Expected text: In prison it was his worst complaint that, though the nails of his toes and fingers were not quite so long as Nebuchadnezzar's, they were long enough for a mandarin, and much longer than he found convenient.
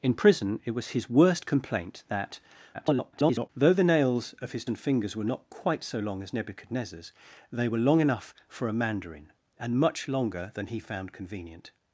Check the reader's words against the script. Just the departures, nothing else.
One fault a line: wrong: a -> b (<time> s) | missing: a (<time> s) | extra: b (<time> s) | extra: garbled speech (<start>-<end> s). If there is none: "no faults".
extra: garbled speech (2.7-3.5 s)
missing: toes (4.7 s)